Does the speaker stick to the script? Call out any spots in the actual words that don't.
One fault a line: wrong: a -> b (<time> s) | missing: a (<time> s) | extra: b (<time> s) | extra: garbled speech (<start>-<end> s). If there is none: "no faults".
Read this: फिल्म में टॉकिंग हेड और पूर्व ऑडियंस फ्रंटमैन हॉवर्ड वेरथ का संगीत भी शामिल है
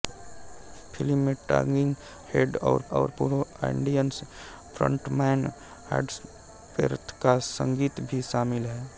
extra: और (2.9 s)